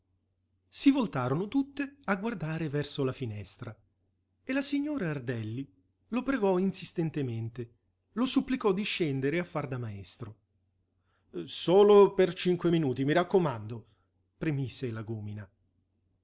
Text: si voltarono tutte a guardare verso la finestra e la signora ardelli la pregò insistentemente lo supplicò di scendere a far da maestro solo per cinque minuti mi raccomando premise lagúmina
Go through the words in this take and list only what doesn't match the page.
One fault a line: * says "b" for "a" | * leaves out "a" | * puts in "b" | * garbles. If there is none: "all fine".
* says "lo" for "la"